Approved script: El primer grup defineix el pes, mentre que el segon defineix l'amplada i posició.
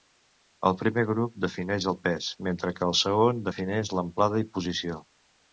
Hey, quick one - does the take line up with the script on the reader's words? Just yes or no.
yes